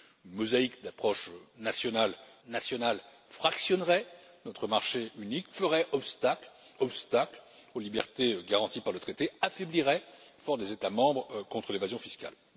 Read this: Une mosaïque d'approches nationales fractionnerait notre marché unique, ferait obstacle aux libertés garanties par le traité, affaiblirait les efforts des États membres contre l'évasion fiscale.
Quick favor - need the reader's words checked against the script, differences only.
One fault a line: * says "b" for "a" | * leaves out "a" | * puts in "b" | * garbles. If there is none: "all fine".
* puts in "nationales"
* puts in "obstacle"
* leaves out "les"